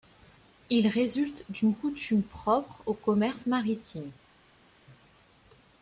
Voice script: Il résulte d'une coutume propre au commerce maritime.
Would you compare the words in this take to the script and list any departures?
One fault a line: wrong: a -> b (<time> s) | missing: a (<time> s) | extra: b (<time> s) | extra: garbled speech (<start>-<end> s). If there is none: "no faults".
no faults